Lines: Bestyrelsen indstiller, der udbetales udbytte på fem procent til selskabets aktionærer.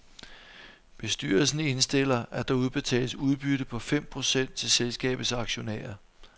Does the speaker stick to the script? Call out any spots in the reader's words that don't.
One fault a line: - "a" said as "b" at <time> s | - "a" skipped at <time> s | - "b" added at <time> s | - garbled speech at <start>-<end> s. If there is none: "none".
- "at" added at 2.3 s